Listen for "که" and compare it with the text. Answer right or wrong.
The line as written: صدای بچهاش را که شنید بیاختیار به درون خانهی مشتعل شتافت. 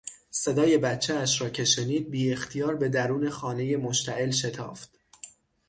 right